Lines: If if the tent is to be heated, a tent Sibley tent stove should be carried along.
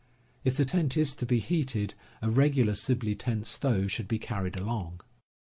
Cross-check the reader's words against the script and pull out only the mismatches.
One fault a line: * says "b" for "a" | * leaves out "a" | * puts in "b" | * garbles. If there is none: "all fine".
* leaves out "if"
* says "regular" for "tent"